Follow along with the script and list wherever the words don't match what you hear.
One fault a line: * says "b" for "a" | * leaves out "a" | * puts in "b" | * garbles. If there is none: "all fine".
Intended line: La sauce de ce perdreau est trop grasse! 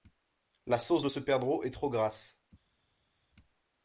all fine